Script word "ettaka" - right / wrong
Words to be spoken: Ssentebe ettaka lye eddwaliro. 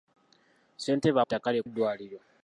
right